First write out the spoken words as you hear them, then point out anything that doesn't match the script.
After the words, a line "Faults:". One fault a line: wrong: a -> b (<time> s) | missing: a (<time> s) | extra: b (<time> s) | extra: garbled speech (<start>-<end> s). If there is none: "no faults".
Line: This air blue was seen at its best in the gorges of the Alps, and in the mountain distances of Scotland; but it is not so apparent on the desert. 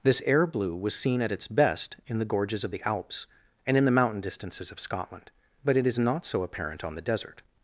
This air blue was seen at its best in the gorges of the Alps, and in the mountain distances of Scotland; but it is not so apparent on the desert.
Faults:
no faults